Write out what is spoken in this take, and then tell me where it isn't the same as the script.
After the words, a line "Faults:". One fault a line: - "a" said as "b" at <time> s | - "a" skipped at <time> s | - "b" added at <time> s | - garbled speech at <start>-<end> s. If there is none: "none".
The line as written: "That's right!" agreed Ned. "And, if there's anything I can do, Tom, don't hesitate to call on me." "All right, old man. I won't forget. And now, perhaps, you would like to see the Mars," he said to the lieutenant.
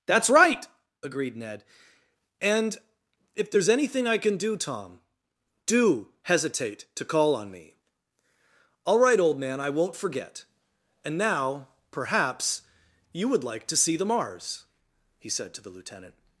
"That's right!" agreed Ned. "And, if there's anything I can do, Tom, do hesitate to call on me." "All right, old man. I won't forget. And now, perhaps, you would like to see the Mars," he said to the lieutenant.
Faults:
- "don't" said as "do" at 5.7 s